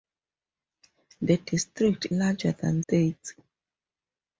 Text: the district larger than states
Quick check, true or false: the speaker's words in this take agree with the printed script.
true